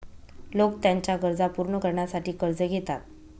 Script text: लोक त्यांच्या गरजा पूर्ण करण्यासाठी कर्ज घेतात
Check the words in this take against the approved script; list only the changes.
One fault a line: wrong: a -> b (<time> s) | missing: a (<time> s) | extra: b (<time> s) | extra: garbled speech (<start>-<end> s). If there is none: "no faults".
no faults